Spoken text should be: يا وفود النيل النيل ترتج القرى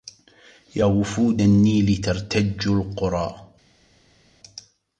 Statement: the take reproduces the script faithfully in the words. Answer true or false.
false